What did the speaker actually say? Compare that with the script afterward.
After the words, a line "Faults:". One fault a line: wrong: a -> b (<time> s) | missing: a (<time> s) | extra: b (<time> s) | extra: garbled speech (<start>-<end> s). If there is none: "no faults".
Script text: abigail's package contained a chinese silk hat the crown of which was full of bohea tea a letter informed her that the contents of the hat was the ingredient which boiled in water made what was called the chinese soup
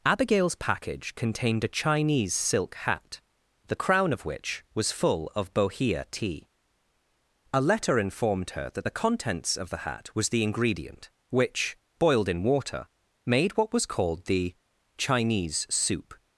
abigail's package contained a chinese silk hat the crown of which was full of bohea tea a letter informed her that the contents of the hat was the ingredient which boiled in water made what was called the chinese soup
Faults:
no faults